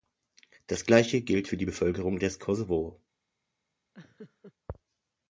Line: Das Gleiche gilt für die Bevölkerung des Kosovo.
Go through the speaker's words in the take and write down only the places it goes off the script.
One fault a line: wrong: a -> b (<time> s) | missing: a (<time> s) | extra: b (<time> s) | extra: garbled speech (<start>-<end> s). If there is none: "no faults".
no faults